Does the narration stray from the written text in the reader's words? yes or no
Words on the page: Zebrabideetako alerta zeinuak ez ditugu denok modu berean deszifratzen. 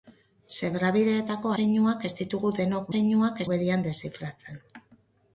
yes